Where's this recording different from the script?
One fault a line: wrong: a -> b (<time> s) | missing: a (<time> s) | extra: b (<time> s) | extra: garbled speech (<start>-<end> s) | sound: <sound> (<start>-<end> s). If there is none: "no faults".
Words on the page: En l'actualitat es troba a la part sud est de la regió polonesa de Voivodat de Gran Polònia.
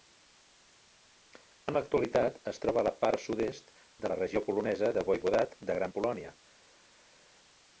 no faults